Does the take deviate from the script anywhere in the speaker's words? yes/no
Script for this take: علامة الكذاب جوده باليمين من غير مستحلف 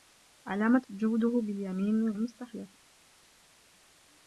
yes